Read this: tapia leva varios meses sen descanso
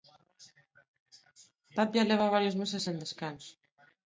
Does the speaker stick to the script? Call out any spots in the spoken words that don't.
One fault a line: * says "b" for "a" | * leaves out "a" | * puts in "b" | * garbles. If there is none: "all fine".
all fine